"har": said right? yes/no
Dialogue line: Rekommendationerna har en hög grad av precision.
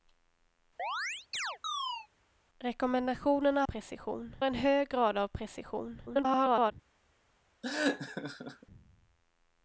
no